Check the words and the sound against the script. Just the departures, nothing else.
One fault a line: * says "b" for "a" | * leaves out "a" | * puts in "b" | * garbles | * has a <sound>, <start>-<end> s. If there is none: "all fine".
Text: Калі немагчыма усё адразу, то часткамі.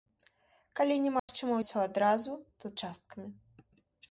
* has a dropout, 1.2-1.3 s